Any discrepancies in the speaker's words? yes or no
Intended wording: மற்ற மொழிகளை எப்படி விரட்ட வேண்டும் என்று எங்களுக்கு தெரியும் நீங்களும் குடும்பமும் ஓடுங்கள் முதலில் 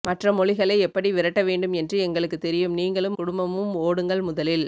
no